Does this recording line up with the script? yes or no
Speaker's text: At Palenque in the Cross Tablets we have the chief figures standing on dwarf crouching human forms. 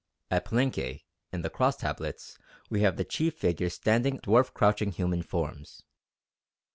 no